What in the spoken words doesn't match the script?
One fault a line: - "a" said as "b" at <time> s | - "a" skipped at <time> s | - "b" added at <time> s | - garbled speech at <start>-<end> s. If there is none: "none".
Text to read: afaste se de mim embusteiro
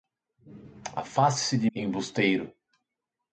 - "mim" skipped at 1.7 s